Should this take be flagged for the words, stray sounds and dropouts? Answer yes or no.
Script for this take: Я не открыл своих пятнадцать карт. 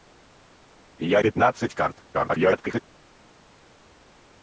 yes